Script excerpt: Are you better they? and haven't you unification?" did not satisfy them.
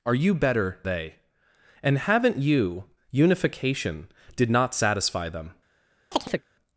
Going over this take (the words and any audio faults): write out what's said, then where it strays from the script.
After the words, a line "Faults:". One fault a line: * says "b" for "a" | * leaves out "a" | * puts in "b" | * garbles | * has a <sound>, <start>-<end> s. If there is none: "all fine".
Are you better they? and haven't you unification?" did not satisfy them.
Faults:
* has a chirp, 6.1-6.4 s